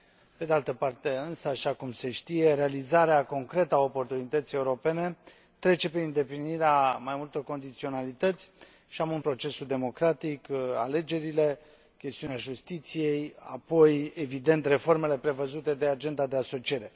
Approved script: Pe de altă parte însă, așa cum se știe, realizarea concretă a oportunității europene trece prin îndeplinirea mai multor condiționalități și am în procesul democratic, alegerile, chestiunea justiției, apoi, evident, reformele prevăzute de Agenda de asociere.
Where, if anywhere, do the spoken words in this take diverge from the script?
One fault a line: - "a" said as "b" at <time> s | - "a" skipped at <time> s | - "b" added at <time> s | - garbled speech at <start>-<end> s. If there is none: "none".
none